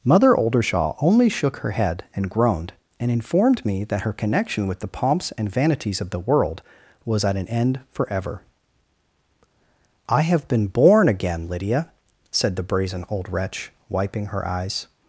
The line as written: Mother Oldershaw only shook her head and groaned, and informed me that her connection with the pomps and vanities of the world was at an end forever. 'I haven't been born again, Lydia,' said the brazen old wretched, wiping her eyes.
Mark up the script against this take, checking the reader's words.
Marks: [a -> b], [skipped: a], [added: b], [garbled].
Mother Oldershaw only shook her head and groaned, and informed me that her connection with the pomps and vanities of the world was at an end forever. 'I [haven't -> have] been born again, Lydia,' said the brazen old [wretched, -> wretch] wiping her eyes.